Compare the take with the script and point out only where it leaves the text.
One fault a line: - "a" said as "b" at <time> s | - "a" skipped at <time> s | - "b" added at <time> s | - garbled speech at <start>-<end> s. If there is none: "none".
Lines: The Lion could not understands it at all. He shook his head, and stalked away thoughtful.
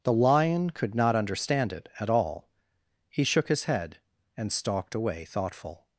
- "understands" said as "understand" at 1.2 s